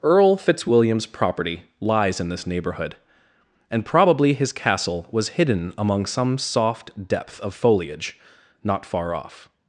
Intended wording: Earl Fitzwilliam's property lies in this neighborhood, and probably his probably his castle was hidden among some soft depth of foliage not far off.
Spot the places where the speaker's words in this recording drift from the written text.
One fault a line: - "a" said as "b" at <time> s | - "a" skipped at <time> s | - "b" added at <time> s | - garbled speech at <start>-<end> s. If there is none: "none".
- "probably his" skipped at 4.5 s